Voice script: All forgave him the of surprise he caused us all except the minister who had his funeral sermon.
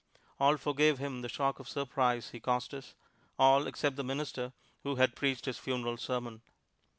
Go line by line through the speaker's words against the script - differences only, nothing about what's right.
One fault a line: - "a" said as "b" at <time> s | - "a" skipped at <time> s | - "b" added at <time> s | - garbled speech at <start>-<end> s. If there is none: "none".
- "shock" added at 1.3 s
- "preached" added at 5.2 s